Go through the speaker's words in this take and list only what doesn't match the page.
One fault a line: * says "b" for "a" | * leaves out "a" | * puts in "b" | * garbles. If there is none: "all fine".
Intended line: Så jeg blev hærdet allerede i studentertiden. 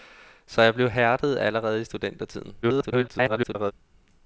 * garbles